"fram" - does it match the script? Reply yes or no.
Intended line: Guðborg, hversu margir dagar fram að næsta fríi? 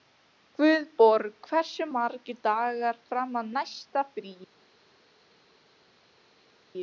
yes